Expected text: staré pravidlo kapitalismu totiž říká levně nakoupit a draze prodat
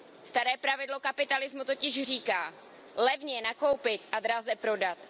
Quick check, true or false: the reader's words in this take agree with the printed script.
true